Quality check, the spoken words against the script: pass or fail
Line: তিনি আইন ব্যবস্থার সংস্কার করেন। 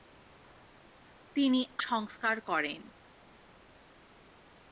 fail